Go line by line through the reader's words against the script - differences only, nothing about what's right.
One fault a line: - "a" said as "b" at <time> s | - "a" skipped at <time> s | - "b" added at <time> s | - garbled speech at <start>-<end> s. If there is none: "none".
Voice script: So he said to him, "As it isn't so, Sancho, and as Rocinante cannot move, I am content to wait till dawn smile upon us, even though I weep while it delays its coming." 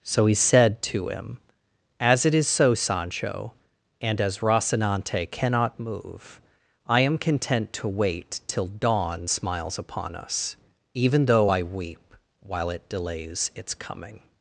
- "isn't" said as "is" at 2.3 s
- "smile" said as "smiles" at 9.2 s